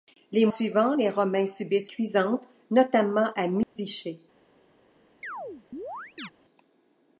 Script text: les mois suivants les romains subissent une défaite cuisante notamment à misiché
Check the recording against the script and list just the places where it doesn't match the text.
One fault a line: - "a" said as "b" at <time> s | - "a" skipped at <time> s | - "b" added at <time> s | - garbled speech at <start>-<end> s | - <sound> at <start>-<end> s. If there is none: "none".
- "mois" skipped at 0.5 s
- "une défaite" skipped at 1.9 s
- dropout at 3.6-3.8 s
- chirp at 5.2-6.3 s